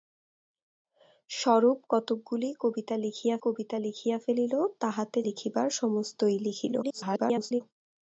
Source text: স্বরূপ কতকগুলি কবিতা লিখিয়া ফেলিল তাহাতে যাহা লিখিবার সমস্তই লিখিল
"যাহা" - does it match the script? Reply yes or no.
no